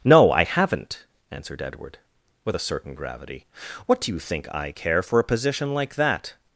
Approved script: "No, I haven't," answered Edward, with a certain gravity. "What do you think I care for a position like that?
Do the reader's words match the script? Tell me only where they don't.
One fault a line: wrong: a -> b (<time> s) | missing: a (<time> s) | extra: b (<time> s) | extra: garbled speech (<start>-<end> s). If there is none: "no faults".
no faults